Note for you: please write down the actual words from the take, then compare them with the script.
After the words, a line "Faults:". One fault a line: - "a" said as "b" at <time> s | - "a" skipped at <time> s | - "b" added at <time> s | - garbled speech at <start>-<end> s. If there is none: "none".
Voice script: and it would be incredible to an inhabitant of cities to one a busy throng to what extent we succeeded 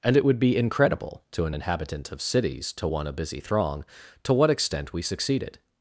and it would be incredible to an inhabitant of cities to one a busy throng to what extent we succeeded
Faults:
none